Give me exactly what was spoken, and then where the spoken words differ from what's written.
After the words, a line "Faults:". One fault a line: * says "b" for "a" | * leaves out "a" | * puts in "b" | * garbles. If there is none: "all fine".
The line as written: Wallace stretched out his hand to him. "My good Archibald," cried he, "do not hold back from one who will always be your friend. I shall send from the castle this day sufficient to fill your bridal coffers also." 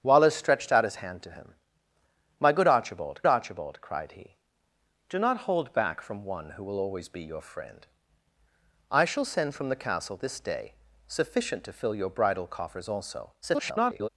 Wallace stretched out his hand to him. "My good Archibald Archibald," cried he, "do not hold back from one who will always be your friend. I shall send from the castle this day sufficient to fill your bridal coffers also." [garbled]
Faults:
* puts in "Archibald"
* garbles